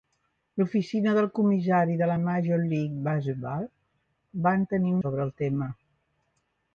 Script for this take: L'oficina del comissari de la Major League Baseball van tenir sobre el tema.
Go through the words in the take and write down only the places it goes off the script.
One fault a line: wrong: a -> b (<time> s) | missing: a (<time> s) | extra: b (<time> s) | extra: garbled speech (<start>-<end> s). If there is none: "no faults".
no faults